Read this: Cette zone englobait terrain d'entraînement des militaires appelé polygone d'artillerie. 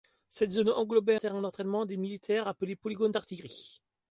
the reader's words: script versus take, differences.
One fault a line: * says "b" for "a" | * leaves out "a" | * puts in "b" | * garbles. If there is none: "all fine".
all fine